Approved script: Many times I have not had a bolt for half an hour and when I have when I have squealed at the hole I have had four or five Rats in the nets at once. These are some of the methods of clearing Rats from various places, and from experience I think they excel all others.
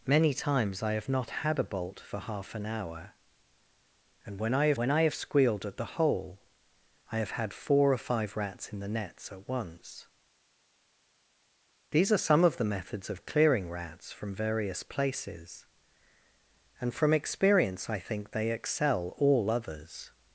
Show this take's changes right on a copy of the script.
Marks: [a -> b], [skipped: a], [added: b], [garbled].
Many times I have not had a bolt for half an hour and when I have when I have squealed at the hole I have had four or five Rats in the nets at once. These are some of the methods of clearing Rats from various places, and from experience I think they excel all others.